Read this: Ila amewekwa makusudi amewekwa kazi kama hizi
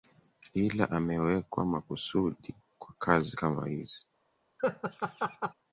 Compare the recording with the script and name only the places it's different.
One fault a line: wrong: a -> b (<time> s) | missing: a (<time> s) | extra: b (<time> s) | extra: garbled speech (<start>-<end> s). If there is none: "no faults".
wrong: amewekwa -> kwa (2.8 s)